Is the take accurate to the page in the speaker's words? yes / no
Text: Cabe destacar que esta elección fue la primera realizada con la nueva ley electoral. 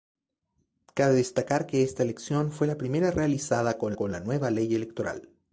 no